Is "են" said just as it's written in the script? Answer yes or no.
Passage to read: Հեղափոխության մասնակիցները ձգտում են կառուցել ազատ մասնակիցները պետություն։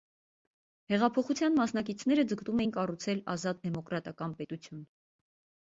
no